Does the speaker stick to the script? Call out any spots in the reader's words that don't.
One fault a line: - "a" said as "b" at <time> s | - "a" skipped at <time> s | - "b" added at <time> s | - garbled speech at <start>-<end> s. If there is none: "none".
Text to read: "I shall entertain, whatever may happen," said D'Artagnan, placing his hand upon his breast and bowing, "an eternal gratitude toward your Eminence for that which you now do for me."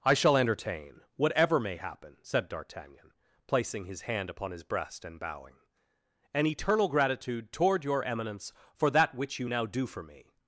none